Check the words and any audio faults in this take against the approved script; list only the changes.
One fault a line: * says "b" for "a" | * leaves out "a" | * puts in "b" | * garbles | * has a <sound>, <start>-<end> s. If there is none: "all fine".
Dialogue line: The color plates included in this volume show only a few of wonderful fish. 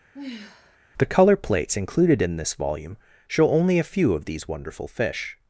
* has a sigh, 0.1-0.8 s
* puts in "these"